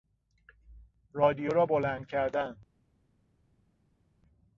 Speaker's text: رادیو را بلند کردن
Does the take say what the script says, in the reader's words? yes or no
yes